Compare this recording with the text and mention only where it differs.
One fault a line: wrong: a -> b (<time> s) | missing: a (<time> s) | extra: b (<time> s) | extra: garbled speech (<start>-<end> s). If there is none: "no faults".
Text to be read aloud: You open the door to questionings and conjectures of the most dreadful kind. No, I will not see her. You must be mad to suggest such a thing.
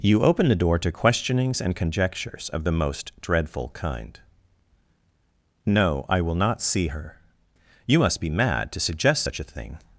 no faults